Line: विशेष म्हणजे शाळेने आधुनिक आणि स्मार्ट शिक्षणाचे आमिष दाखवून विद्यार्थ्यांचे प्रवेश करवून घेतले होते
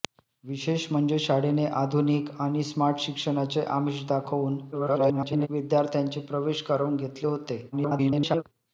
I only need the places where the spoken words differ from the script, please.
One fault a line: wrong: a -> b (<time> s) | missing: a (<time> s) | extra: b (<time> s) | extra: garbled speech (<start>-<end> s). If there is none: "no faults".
extra: garbled speech (4.7-5.5 s)
extra: garbled speech (7.7-8.4 s)